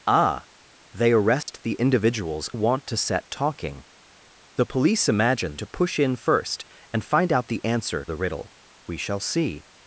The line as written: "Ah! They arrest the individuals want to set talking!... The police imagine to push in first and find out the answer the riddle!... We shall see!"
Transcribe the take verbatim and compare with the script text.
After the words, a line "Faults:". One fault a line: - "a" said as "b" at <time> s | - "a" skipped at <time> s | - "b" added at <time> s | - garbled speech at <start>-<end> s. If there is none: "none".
"Ah! They arrest the individuals want to set talking!... The police imagine to push in first and find out the answer the riddle!... We shall see!"
Faults:
none